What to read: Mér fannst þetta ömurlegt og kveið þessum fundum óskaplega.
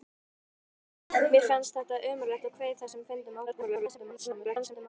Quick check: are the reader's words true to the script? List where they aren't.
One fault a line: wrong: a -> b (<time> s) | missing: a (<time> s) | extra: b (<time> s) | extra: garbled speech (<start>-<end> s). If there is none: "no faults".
extra: garbled speech (3.5-4.9 s)